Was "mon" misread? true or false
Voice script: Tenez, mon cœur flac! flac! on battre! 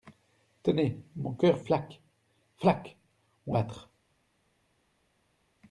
false